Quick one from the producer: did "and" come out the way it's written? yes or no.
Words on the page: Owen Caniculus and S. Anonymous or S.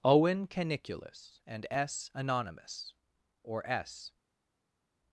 yes